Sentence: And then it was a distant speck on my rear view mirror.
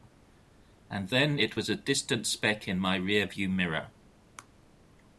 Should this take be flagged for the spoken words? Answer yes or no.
yes